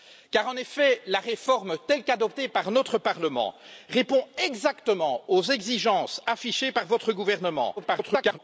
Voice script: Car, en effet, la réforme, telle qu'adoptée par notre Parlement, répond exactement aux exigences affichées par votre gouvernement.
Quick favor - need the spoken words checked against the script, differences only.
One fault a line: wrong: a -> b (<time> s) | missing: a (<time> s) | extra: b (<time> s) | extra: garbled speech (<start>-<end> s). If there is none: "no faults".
extra: garbled speech (7.8-8.4 s)